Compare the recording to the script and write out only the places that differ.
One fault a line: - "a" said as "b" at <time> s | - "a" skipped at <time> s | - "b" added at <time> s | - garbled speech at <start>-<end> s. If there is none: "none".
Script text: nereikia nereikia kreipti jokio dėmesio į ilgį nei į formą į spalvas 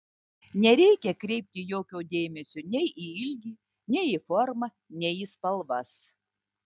- "nereikia" skipped at 1.1 s
- "nei" added at 2.8 s
- "nei" added at 5.0 s